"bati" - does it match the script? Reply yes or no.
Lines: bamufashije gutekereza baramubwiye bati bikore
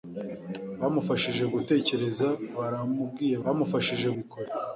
no